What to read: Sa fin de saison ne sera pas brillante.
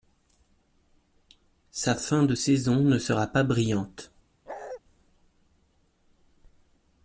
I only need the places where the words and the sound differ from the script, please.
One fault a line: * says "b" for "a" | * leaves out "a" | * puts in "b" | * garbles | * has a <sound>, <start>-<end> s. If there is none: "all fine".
* has a bark, 4.5-4.8 s